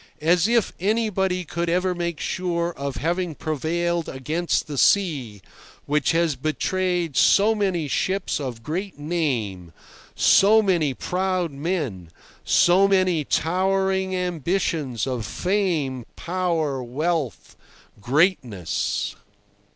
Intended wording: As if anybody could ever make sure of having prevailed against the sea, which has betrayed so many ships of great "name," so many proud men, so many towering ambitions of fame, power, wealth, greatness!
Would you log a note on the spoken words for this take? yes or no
no